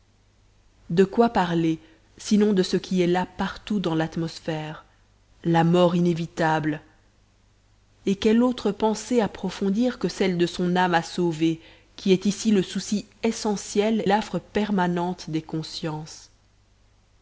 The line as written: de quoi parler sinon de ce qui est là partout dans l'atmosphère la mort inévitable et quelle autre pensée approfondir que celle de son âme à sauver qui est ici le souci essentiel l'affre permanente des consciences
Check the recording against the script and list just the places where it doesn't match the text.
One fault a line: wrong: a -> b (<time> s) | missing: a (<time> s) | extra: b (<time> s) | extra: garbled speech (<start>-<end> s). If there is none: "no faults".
no faults